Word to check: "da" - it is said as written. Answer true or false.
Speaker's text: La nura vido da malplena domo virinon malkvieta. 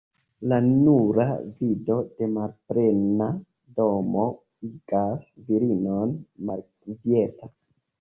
false